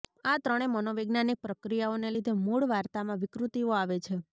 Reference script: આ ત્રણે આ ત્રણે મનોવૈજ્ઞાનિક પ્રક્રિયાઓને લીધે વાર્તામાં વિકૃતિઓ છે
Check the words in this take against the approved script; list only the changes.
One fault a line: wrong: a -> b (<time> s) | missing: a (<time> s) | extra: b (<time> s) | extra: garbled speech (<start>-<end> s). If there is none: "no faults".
missing: આ ત્રણે (0.7 s)
extra: મૂળ (2.4 s)
extra: આવે (3.8 s)